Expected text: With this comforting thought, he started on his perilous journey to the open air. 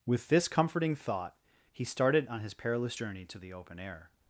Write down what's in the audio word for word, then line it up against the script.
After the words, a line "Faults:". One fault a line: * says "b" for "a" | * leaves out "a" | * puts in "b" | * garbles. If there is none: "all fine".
With this comforting thought, he started on his perilous journey to the open air.
Faults:
all fine